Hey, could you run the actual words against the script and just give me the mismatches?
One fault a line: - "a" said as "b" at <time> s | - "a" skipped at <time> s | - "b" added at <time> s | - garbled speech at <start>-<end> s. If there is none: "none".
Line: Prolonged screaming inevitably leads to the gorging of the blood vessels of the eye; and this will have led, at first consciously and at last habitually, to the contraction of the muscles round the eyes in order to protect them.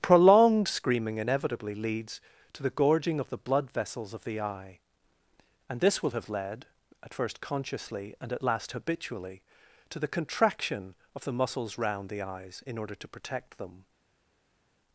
none